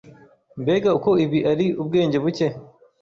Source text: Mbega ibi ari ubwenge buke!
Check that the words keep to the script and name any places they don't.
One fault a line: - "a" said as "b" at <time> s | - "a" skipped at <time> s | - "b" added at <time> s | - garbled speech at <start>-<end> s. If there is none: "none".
- "uko" added at 1.0 s